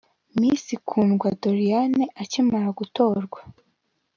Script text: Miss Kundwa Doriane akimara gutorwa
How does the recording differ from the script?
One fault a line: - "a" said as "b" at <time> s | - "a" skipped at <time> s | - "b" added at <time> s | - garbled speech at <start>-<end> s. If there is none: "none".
none